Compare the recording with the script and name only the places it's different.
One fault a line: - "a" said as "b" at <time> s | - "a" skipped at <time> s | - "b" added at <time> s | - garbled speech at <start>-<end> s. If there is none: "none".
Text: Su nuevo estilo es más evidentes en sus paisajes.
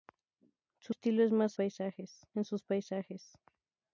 - "nuevo" skipped at 0.9 s
- "evidentes" said as "paisajes" at 1.5 s